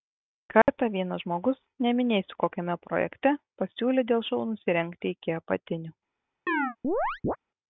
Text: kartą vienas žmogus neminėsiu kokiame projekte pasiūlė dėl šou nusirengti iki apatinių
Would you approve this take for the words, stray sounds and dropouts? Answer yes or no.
no